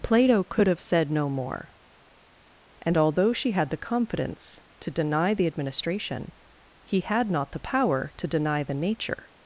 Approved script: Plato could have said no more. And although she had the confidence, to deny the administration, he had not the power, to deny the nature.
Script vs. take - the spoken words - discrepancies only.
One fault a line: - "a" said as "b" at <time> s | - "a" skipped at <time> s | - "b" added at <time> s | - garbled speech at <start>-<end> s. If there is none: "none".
none